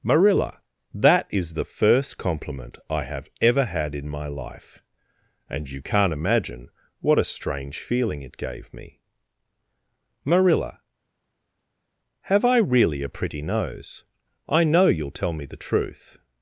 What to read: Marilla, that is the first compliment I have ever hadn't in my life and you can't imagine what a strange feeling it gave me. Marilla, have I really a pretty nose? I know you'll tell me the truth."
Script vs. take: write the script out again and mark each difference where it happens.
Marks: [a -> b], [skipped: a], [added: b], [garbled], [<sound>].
Marilla, that is the first compliment I have ever [hadn't -> had] in my life and you can't imagine what a strange feeling it gave me. Marilla, have I really a pretty nose? I know you'll tell me the truth."